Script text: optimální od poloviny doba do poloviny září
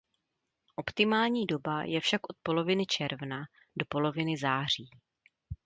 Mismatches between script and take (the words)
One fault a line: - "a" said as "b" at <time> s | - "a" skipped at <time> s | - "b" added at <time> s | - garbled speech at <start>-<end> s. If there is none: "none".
- "doba je však" added at 1.4 s
- "doba" said as "června" at 2.9 s